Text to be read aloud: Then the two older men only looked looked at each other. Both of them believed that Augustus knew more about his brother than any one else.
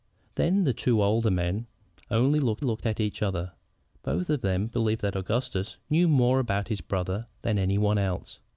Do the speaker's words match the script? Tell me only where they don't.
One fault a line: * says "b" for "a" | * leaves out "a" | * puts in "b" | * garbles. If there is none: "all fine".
all fine